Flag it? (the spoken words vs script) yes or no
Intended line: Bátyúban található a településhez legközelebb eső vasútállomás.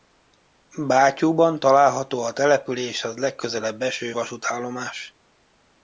no